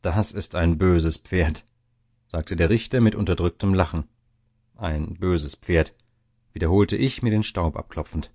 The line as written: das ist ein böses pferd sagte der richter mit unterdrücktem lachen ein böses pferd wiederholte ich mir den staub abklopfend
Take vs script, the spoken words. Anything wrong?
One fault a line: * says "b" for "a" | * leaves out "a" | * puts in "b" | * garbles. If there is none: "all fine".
all fine